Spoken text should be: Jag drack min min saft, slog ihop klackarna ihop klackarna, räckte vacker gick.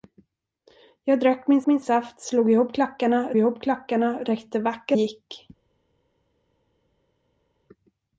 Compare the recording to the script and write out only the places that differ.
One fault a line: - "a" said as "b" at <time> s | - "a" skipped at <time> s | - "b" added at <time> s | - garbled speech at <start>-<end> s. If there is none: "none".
none